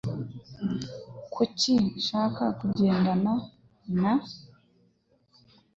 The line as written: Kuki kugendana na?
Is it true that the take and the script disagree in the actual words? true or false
true